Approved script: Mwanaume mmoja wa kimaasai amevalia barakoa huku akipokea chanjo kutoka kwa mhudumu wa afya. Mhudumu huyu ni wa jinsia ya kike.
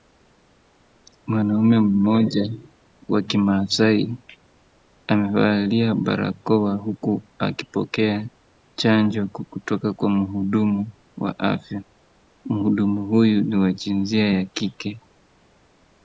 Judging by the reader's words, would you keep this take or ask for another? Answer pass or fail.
pass